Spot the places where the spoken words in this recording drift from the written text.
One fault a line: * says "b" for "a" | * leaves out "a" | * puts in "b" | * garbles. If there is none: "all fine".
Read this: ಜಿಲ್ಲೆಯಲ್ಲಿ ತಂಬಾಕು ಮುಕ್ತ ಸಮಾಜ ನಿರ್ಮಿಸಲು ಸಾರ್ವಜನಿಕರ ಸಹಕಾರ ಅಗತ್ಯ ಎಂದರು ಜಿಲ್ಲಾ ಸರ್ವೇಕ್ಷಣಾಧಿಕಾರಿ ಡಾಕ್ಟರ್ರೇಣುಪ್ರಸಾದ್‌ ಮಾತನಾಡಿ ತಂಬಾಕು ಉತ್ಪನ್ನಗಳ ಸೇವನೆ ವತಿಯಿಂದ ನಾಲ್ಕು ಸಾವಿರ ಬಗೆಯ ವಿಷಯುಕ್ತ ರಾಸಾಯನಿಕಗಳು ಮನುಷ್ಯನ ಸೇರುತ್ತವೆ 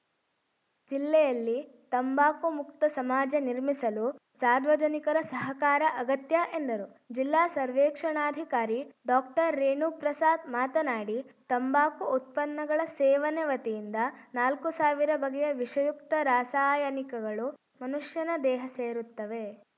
* puts in "ದೇಹ"